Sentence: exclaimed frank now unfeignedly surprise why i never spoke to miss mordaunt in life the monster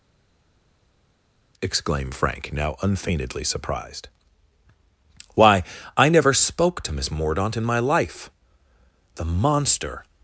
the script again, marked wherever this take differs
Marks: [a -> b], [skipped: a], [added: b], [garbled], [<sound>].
exclaimed frank now unfeignedly [surprise -> surprised] why i never spoke to miss mordaunt in [added: my] life the monster